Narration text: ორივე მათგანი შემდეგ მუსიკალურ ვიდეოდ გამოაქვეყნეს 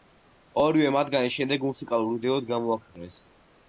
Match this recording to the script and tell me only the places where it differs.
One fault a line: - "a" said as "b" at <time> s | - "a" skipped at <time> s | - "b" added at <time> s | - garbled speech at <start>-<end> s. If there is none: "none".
none